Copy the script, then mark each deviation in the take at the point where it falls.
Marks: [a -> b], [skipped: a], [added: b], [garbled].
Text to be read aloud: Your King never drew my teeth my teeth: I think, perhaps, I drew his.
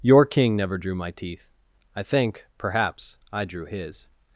Your King never drew my teeth [skipped: my teeth:] I think, perhaps, I drew his.